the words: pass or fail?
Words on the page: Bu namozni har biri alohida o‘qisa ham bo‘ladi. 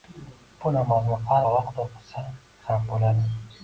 fail